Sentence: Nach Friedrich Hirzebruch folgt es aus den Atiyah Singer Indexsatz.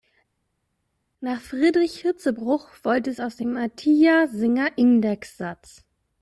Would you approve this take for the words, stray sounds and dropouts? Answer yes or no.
no